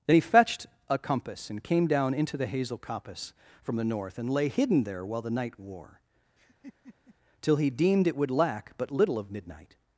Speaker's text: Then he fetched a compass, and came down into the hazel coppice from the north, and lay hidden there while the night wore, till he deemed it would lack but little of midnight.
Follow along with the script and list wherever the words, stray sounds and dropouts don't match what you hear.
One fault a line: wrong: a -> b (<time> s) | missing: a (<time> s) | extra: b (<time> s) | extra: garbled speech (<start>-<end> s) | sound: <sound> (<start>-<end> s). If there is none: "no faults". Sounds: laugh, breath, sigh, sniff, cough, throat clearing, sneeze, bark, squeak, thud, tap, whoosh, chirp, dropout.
sound: laugh (6.4-7.2 s)